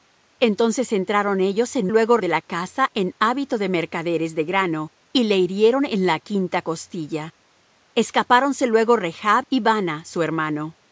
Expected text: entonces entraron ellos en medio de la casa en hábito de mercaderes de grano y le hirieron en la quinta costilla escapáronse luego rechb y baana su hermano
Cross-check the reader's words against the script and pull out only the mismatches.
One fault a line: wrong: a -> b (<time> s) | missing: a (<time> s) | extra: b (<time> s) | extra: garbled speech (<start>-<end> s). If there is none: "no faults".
wrong: medio -> luego (1.9 s)